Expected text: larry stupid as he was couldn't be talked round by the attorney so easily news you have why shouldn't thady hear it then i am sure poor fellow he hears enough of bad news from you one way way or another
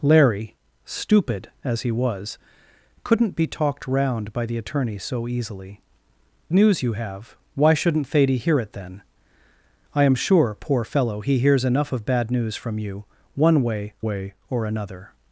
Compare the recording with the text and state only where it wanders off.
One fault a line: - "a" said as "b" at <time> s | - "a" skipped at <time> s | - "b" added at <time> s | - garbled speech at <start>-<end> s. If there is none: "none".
none